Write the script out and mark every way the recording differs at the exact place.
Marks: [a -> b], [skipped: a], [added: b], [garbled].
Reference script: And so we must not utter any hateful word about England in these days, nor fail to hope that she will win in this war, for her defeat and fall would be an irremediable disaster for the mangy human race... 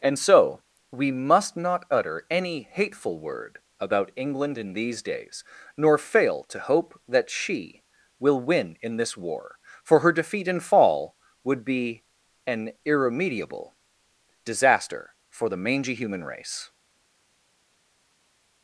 And so we must not utter any hateful word about England in these days, nor fail to hope that she will win in this war, for her defeat and fall would be an irremediable disaster for the mangy human race...